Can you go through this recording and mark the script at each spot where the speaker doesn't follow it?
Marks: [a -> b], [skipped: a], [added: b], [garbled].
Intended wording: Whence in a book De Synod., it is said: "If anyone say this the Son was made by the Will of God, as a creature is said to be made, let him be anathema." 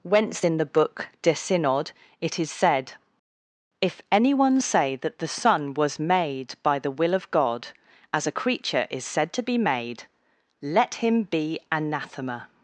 Whence in [a -> the] book De Synod., it is said: "If anyone say [this -> that] the Son was made by the Will of God, as a creature is said to be made, let him be anathema."